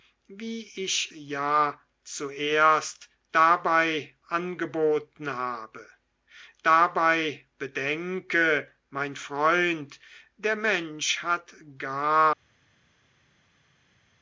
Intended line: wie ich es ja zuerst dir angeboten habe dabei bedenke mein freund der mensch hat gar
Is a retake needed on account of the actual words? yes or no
yes